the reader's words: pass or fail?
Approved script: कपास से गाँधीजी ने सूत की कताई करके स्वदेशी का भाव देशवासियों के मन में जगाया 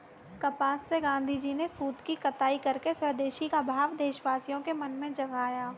pass